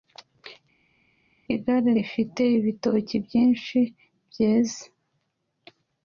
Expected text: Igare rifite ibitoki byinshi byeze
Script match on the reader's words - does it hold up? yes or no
yes